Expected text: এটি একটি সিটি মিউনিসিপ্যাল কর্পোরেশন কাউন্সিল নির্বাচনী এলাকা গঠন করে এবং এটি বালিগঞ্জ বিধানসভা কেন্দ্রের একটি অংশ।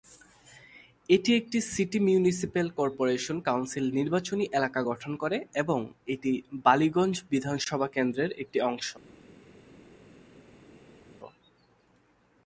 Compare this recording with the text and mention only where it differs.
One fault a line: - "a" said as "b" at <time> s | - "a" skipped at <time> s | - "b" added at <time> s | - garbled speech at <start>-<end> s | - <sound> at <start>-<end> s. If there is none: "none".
none